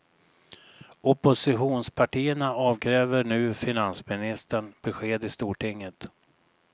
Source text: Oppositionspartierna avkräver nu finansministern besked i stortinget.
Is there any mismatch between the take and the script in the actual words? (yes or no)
no